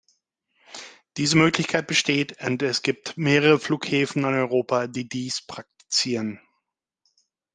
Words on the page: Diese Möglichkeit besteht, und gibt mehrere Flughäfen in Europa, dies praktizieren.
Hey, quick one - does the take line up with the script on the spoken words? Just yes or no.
no